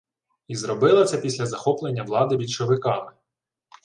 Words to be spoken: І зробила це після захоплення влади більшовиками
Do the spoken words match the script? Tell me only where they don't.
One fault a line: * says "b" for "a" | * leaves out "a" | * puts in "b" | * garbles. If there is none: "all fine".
all fine